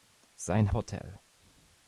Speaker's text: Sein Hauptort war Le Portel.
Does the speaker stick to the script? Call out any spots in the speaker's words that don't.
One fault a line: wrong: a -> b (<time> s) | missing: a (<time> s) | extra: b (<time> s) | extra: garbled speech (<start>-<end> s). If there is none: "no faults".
missing: Hauptort war Le (0.7 s)